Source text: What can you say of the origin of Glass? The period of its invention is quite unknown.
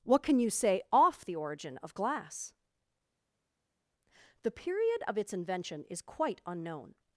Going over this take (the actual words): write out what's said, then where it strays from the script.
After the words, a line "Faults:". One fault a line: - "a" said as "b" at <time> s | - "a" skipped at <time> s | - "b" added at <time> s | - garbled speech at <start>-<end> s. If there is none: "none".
What can you say off the origin of Glass? The period of its invention is quite unknown.
Faults:
- "of" said as "off" at 0.9 s